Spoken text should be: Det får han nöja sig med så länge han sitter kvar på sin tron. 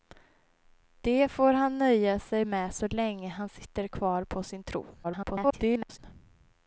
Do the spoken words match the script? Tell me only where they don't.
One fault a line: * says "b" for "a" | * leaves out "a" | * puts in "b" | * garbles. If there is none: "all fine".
* garbles